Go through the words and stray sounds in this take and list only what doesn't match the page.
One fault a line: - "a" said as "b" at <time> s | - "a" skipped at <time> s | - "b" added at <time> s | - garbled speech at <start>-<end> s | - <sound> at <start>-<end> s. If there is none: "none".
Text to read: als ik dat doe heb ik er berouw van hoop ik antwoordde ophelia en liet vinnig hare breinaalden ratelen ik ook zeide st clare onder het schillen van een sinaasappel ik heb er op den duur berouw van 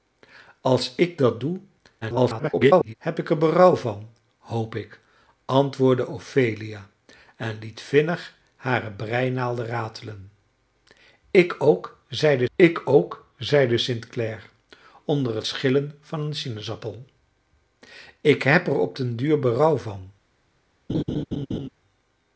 - garbled speech at 2.0-2.9 s
- "ik ook zeide" added at 12.5 s
- laugh at 20.9-21.7 s